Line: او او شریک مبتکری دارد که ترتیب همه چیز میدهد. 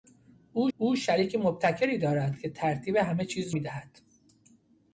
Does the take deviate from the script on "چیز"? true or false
false